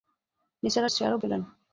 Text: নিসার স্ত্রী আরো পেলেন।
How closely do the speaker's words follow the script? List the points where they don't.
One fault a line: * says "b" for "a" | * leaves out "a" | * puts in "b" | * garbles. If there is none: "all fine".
all fine